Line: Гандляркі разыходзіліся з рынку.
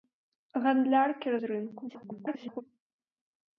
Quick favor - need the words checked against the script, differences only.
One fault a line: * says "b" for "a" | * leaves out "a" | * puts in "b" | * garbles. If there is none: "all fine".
* leaves out "разыходзіліся"
* garbles